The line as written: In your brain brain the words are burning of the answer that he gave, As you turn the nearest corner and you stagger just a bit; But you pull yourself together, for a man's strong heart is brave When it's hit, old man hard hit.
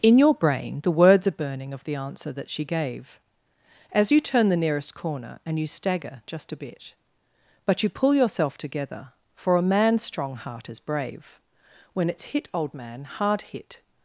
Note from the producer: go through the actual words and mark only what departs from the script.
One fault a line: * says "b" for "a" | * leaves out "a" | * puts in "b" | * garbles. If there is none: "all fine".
* leaves out "brain"
* says "she" for "he"